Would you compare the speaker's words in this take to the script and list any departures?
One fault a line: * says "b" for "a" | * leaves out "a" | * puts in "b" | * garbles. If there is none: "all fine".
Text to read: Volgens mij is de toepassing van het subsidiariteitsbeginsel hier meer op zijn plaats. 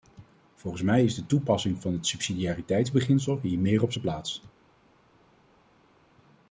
all fine